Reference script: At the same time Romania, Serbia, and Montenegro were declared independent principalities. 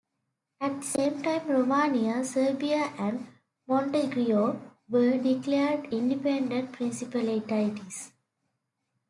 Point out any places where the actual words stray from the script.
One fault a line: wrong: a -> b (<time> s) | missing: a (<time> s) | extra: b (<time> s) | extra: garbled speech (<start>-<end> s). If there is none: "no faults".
no faults